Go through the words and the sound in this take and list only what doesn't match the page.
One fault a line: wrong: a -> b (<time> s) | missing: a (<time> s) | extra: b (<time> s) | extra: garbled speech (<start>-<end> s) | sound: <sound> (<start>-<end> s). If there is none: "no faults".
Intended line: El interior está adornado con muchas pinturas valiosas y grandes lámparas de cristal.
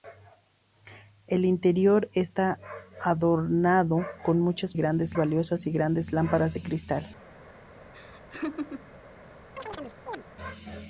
wrong: pinturas -> grandes (4.8 s)
sound: laugh (7.9-8.9 s)
sound: chirp (9.6-10.2 s)